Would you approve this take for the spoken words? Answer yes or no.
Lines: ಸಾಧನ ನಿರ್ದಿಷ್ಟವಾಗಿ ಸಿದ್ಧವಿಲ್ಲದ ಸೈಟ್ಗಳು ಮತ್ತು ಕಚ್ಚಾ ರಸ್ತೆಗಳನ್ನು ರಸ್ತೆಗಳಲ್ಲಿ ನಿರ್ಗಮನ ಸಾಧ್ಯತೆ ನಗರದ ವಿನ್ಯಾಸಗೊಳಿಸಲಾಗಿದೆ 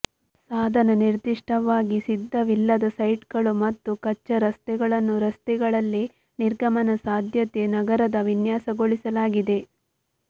yes